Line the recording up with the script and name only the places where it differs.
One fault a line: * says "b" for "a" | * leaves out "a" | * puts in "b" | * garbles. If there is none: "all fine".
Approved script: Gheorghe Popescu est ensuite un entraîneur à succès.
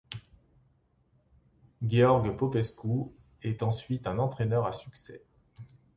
all fine